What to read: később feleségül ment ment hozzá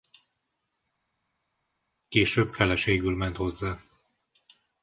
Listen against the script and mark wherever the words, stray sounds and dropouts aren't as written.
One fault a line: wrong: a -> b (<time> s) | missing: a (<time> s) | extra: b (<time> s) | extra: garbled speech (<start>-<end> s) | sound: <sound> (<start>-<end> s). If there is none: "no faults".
missing: ment (3.4 s)